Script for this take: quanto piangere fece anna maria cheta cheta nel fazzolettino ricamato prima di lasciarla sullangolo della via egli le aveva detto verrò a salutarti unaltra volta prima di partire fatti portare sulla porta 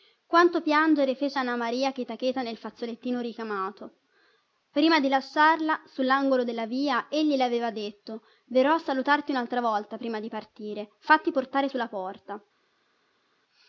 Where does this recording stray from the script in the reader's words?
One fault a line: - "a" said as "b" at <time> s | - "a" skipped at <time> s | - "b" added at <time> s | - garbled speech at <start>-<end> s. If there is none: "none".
none